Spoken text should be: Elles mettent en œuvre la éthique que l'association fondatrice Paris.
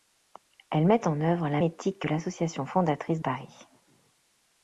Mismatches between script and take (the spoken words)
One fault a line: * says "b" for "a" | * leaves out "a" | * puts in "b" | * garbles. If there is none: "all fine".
all fine